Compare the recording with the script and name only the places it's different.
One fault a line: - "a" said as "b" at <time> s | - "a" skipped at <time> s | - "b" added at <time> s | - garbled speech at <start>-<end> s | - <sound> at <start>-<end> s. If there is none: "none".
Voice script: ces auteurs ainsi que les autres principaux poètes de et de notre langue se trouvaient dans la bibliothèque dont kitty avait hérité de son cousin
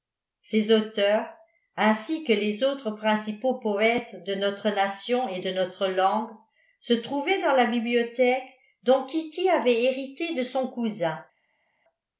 - "notre nation" added at 4.3 s